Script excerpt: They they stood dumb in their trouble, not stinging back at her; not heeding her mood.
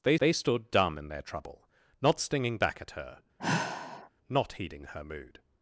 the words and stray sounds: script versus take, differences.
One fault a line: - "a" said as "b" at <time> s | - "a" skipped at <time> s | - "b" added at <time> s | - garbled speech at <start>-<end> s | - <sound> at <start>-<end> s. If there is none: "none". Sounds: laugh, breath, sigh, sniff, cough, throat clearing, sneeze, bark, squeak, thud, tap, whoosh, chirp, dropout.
- sigh at 3.4-4.1 s